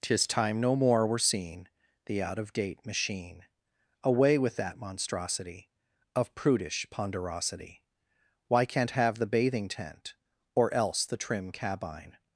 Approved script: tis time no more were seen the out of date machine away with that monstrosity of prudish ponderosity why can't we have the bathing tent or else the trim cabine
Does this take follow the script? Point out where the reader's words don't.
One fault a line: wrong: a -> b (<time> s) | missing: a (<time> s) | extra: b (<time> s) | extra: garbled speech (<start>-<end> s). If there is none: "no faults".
missing: we (8.9 s)